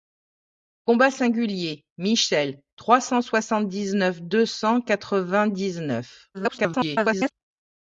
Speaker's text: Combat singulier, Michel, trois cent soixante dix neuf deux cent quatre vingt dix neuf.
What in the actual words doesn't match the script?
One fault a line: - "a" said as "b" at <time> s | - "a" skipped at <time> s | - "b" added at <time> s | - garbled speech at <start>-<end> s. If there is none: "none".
- garbled speech at 6.3-7.3 s